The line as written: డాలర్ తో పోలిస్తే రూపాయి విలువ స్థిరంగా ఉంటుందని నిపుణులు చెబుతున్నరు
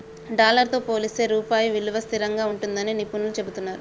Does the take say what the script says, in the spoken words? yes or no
yes